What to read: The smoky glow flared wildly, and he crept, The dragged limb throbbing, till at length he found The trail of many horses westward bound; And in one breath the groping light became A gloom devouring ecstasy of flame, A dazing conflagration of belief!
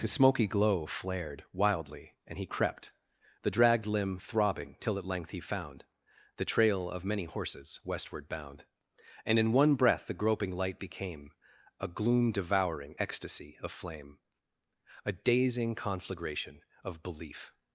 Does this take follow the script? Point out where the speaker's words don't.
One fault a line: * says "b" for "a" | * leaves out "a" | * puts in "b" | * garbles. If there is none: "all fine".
* says "His" for "The"